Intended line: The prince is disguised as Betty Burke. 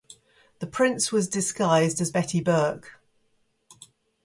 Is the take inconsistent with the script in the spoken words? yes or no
yes